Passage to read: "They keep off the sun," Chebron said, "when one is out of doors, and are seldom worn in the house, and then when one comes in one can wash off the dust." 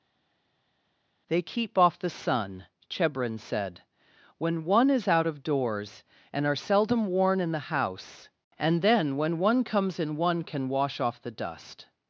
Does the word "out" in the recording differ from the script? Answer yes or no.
no